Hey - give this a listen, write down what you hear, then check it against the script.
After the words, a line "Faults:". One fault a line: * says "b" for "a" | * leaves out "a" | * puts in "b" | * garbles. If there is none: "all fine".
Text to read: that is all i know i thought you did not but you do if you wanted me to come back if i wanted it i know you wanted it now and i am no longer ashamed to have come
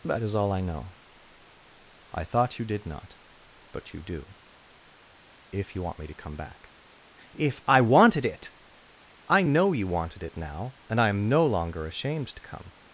that is all i know i thought you did not but you do if you want me to come back if i wanted it i know you wanted it now and i am no longer ashamed to come
Faults:
* says "want" for "wanted"
* leaves out "have"